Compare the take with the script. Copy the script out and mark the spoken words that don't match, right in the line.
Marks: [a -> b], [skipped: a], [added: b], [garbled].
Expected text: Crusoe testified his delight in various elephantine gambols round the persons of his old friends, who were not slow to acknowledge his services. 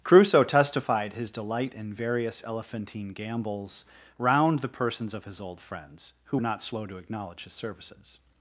Crusoe testified his delight in various elephantine gambols round the persons of his old friends, who [skipped: were] not slow to acknowledge his services.